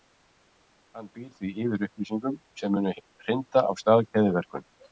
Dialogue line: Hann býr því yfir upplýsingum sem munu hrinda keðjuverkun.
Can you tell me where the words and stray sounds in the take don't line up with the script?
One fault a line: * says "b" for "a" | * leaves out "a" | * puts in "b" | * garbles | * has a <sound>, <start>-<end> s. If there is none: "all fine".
* puts in "af stað"